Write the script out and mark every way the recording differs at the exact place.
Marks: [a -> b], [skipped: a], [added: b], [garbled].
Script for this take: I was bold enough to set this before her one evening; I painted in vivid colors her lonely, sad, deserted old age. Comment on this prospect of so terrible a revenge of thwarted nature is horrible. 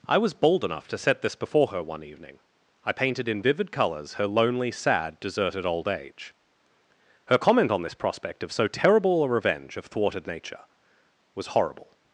I was bold enough to set this before her one evening; I painted in vivid colors her lonely, sad, deserted old age. [added: Her] Comment on this prospect of so terrible a revenge of thwarted nature [is -> was] horrible.